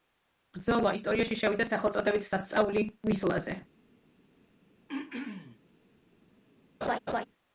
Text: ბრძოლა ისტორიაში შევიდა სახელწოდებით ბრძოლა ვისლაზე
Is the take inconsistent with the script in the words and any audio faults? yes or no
yes